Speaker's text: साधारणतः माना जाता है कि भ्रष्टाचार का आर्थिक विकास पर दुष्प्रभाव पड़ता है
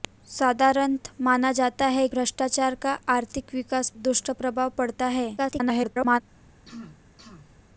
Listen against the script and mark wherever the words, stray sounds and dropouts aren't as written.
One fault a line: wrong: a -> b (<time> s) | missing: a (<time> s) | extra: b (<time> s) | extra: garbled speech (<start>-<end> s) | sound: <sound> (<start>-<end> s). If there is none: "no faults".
missing: कि (2.1 s)
missing: पर (3.9 s)
extra: garbled speech (5.4-6.2 s)
sound: throat clearing (6.6-7.6 s)